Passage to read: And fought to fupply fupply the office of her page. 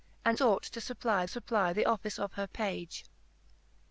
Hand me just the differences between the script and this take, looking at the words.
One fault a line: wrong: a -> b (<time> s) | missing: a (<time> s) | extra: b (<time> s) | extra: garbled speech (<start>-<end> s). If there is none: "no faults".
no faults